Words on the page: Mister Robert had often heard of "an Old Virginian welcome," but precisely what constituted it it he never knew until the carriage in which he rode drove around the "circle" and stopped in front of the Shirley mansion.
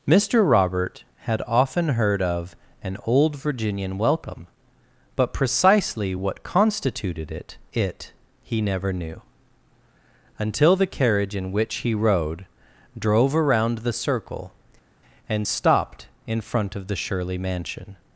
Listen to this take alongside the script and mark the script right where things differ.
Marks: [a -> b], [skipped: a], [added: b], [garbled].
Mister Robert had often heard of "an Old Virginian welcome," but precisely what constituted it it he never knew until the carriage in which he rode drove around the "circle" and stopped in front of the Shirley mansion.